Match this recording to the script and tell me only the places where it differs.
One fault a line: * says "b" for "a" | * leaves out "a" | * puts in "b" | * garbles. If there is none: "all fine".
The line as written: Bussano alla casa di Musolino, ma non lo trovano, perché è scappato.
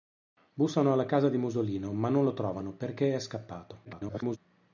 * garbles